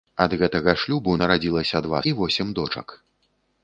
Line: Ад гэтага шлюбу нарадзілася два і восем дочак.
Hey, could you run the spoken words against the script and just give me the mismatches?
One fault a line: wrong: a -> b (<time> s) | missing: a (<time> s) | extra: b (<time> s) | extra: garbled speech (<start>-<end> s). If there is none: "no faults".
no faults